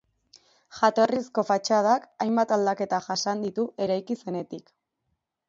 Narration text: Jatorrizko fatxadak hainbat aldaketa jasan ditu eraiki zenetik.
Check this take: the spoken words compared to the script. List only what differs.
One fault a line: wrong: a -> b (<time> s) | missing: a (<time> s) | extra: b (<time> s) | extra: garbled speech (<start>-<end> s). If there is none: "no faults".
no faults